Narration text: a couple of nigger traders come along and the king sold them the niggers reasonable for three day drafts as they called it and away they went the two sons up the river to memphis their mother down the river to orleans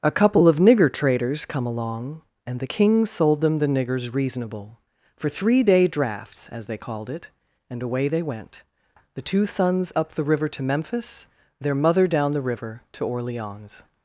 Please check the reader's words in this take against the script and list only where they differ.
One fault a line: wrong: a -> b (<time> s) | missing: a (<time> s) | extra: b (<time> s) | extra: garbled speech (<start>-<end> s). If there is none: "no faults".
no faults